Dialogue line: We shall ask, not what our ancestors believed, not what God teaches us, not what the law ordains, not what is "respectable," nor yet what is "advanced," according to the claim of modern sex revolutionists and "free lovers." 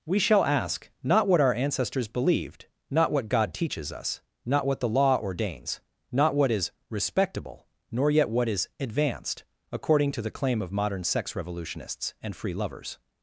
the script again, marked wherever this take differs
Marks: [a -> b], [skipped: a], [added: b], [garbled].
We shall ask, not what our ancestors believed, not what God teaches us, not what the law ordains, not what is "respectable," nor yet what is "advanced," according to the claim of modern sex revolutionists and "free lovers."